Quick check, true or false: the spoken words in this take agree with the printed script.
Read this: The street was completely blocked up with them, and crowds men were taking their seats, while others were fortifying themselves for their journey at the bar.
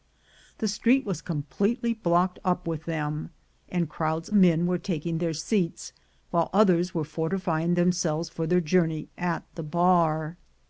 true